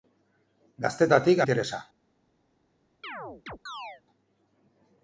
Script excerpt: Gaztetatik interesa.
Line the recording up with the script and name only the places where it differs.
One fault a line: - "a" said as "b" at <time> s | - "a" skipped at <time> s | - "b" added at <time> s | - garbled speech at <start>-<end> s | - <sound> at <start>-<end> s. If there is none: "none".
- chirp at 3.0-4.0 s